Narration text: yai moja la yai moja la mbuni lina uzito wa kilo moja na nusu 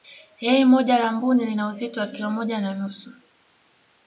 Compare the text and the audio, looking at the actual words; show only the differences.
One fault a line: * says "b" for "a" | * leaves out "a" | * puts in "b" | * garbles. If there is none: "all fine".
* leaves out "yai moja la"